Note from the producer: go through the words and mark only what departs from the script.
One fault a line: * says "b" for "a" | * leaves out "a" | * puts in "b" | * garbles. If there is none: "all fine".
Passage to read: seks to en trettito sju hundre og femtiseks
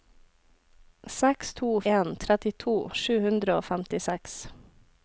all fine